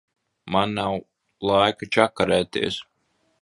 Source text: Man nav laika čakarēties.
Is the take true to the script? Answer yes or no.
yes